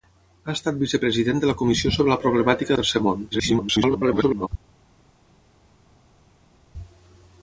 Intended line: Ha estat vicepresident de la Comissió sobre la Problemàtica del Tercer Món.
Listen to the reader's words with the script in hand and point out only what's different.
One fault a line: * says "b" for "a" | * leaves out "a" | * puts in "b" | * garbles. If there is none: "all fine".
* leaves out "del"
* garbles